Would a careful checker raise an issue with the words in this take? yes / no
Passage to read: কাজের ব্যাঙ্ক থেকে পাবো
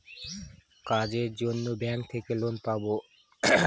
yes